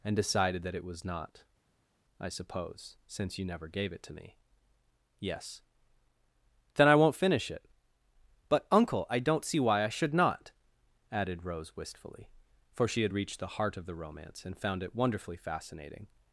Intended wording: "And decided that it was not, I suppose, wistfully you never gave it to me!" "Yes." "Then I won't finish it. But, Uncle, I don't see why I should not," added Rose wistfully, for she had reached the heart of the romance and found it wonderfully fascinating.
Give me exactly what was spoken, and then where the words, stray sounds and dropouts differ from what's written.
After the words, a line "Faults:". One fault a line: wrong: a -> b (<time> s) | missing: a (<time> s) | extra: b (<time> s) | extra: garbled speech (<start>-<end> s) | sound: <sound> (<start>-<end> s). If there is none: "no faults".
"And decided that it was not, I suppose, since you never gave it to me!" "Yes." "Then I won't finish it. But, Uncle, I don't see why I should not," added Rose wistfully, for she had reached the heart of the romance and found it wonderfully fascinating.
Faults:
wrong: wistfully -> since (3.1 s)